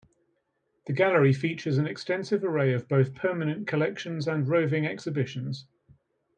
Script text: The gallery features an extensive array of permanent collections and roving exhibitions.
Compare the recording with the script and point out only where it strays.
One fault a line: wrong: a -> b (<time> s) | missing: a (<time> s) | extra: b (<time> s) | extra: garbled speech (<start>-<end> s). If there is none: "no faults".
extra: both (2.9 s)